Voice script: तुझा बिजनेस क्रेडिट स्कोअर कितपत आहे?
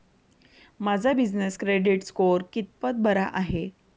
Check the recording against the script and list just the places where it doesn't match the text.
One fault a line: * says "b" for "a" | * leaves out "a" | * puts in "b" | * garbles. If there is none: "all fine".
* says "माझा" for "तुझा"
* puts in "बरा"